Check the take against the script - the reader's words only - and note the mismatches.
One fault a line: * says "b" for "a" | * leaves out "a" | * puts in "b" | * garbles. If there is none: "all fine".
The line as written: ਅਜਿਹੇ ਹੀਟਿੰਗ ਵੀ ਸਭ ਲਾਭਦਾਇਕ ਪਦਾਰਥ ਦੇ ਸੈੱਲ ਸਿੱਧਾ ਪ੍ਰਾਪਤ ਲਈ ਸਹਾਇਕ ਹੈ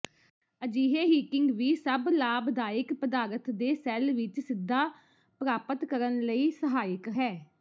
* puts in "ਵਿੱਚ"
* puts in "ਕਰਨ"